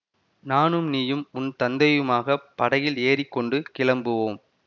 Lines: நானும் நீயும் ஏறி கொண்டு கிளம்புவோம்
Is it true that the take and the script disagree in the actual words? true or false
true